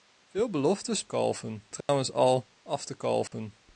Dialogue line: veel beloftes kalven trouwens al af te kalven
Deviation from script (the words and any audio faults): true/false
true